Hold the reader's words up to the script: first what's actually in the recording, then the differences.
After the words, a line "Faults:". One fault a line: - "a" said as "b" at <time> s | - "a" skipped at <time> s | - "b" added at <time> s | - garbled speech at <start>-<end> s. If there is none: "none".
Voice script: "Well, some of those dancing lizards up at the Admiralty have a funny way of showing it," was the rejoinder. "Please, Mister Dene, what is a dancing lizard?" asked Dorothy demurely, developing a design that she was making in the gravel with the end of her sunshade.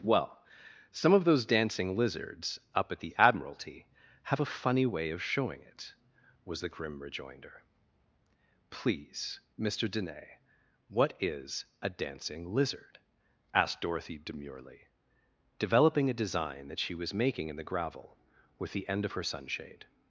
"Well, some of those dancing lizards up at the Admiralty have a funny way of showing it," was the grim rejoinder. "Please, Mister Dene, what is a dancing lizard?" asked Dorothy demurely, developing a design that she was making in the gravel with the end of her sunshade.
Faults:
- "grim" added at 6.7 s